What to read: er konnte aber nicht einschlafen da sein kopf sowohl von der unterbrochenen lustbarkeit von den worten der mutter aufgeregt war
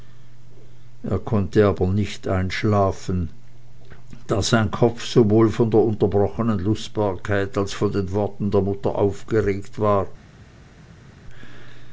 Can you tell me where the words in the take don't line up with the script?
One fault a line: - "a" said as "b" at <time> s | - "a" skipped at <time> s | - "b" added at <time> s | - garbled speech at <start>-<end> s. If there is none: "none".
- "als" added at 7.6 s